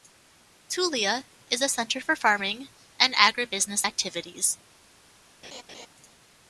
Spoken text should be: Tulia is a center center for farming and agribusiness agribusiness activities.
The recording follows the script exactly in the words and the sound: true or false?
false